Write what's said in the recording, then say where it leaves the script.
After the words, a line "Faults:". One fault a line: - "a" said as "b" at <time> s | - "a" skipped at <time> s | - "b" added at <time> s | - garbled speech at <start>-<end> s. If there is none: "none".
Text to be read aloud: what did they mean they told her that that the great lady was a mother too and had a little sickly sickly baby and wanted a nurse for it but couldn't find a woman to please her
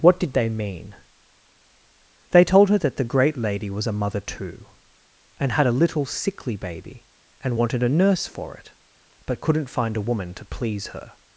what did they mean they told her that the great lady was a mother too and had a little sickly baby and wanted a nurse for it but couldn't find a woman to please her
Faults:
- "that" skipped at 3.0 s
- "sickly" skipped at 6.5 s